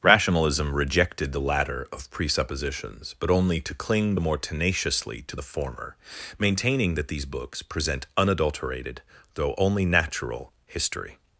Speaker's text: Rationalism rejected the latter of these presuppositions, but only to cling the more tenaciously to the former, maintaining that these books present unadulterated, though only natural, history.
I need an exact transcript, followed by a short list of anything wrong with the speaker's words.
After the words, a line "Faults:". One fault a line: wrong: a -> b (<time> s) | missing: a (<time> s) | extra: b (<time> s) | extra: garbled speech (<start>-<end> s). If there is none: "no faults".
Rationalism rejected the latter of presuppositions, but only to cling the more tenaciously to the former, maintaining that these books present unadulterated, though only natural, history.
Faults:
missing: these (2.1 s)